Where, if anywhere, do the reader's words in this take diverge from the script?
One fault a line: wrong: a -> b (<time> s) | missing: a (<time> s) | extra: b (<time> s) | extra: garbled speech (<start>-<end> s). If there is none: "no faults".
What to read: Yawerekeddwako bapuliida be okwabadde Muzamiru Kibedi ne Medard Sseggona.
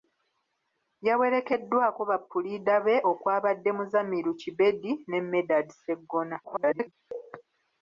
extra: garbled speech (6.4-6.9 s)